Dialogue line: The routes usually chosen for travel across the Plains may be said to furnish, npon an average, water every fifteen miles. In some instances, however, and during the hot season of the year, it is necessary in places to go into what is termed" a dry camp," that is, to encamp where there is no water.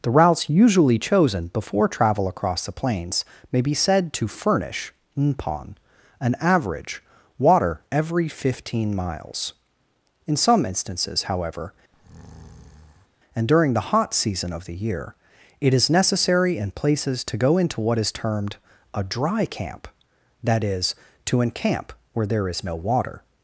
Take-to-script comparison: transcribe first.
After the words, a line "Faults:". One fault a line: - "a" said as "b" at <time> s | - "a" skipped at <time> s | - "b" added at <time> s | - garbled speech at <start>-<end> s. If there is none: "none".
The routes usually chosen before travel across the Plains may be said to furnish, npon an average, water every fifteen miles. In some instances, however, and during the hot season of the year, it is necessary in places to go into what is termed" a dry camp," that is, to encamp where there is no water.
Faults:
- "for" said as "before" at 1.5 s